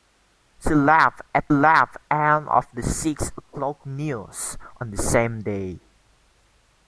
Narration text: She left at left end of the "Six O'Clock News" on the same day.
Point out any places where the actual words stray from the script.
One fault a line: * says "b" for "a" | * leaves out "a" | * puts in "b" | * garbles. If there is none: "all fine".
all fine